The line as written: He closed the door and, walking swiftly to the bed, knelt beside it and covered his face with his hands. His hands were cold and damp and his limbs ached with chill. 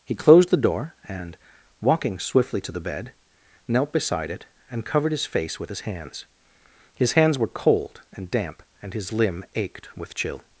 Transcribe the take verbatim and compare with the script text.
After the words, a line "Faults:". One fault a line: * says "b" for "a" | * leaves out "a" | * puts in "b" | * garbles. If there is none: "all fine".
He closed the door and, walking swiftly to the bed, knelt beside it and covered his face with his hands. His hands were cold and damp and his limb ached with chill.
Faults:
* says "limb" for "limbs"